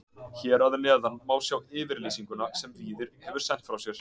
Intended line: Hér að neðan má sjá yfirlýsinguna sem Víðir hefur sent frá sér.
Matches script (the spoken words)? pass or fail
pass